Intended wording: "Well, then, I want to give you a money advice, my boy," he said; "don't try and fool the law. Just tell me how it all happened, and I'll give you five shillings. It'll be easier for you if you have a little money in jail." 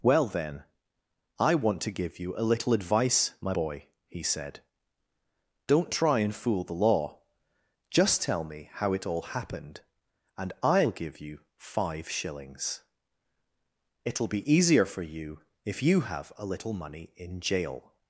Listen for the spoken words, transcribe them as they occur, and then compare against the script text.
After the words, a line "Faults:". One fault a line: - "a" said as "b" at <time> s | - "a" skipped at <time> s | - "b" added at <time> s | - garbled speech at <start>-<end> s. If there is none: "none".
"Well, then, I want to give you a little advice, my boy," he said; "don't try and fool the law. Just tell me how it all happened, and I'll give you five shillings. It'll be easier for you if you have a little money in jail."
Faults:
- "money" said as "little" at 2.5 s